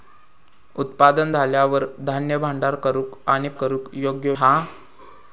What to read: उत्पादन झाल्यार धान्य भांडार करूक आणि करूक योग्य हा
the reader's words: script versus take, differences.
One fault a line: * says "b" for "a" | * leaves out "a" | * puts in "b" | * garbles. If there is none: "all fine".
all fine